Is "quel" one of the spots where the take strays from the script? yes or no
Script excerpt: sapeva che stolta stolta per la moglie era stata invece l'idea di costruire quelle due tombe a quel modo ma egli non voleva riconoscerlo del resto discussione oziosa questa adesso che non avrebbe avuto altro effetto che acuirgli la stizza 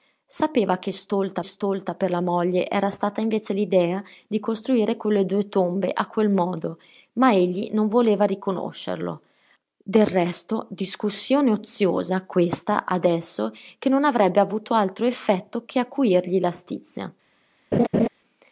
no